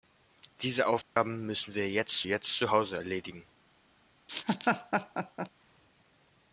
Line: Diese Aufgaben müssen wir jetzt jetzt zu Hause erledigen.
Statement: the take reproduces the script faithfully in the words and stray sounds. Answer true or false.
false